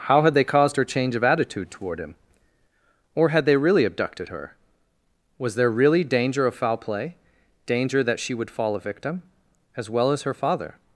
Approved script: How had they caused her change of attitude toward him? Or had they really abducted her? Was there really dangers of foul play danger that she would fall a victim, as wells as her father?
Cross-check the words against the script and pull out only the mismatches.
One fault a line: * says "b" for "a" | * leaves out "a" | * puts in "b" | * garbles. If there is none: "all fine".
* says "danger" for "dangers"
* says "well" for "wells"